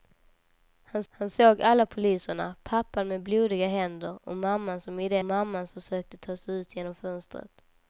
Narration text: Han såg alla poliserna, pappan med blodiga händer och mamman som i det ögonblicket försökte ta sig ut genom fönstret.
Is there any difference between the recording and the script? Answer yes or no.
yes